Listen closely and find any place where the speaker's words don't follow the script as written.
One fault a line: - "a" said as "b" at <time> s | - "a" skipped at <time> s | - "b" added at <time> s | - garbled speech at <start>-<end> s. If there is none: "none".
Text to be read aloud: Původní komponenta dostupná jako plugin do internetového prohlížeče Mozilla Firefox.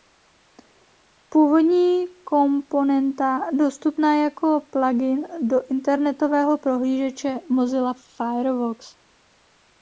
none